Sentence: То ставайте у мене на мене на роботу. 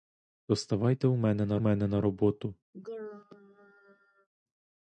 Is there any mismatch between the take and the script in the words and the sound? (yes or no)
yes